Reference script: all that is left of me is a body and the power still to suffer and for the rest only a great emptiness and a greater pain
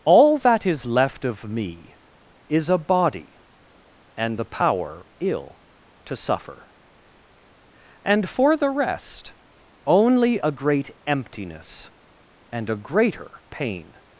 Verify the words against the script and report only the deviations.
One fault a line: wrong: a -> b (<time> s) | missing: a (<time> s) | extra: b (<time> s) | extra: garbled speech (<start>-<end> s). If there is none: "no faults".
wrong: still -> ill (5.2 s)